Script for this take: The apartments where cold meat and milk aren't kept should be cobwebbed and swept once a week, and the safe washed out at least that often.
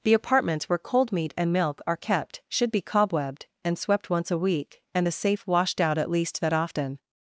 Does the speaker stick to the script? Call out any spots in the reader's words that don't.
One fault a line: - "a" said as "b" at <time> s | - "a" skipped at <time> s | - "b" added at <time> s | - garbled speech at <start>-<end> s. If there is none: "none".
- "aren't" said as "are" at 1.9 s